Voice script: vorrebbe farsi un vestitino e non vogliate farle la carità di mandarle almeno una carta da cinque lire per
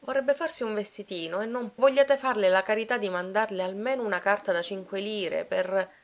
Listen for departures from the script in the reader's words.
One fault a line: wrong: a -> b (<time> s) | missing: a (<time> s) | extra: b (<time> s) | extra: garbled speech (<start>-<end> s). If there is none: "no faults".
no faults